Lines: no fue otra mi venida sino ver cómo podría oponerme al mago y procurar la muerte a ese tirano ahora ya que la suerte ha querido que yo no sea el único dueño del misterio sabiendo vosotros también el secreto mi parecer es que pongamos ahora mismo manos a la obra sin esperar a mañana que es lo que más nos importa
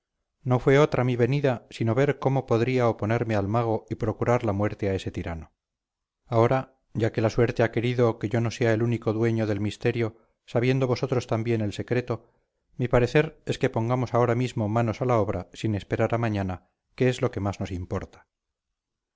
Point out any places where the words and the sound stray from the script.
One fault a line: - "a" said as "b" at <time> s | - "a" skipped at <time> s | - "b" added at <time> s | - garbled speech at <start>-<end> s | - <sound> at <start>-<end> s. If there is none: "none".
none